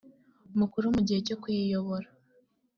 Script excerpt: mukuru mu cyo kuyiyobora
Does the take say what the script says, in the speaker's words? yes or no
no